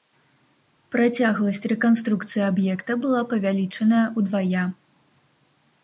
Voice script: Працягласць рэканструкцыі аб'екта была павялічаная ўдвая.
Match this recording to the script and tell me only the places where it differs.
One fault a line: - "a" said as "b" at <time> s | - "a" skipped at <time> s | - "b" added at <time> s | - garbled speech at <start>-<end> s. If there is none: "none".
none